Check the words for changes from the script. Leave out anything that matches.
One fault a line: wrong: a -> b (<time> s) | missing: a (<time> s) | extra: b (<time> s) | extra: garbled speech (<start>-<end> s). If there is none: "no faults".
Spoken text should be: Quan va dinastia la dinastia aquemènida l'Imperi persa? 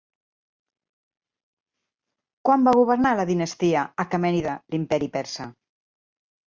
wrong: dinastia -> governar (2.8 s)